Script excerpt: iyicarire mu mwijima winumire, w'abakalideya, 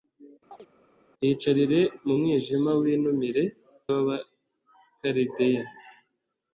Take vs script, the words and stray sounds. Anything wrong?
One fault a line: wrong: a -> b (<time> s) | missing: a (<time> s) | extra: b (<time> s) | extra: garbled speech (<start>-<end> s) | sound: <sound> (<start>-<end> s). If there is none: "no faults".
sound: chirp (0.5-0.7 s)